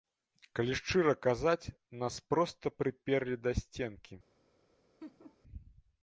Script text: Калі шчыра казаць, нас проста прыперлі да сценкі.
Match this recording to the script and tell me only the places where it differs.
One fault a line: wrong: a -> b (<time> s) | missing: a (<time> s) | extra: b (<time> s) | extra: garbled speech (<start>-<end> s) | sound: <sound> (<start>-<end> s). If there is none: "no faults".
sound: laugh (5.0-5.4 s)